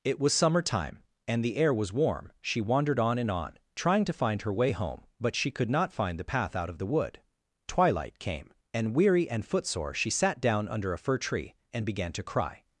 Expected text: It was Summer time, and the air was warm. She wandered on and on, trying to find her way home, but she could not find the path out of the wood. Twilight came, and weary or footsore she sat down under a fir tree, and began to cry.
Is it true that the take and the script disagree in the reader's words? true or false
true